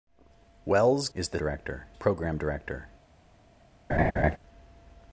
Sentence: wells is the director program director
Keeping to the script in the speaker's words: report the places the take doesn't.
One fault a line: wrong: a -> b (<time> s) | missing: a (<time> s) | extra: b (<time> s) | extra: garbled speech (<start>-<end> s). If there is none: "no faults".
no faults